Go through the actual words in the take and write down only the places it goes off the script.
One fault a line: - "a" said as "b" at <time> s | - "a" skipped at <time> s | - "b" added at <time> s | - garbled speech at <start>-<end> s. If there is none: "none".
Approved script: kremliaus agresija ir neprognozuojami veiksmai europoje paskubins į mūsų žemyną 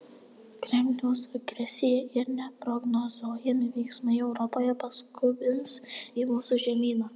none